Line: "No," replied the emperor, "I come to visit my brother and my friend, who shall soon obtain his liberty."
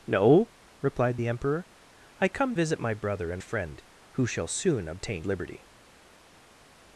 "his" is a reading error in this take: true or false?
true